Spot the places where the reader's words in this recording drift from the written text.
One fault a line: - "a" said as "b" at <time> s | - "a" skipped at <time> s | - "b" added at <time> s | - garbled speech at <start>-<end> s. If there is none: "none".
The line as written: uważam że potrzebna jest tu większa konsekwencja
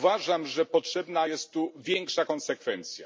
none